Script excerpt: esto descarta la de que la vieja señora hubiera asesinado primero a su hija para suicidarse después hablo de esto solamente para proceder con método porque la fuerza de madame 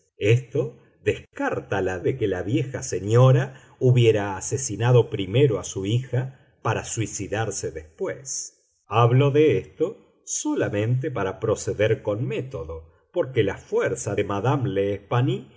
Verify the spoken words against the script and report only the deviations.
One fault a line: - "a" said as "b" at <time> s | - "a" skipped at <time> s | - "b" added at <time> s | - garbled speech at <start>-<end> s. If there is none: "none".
none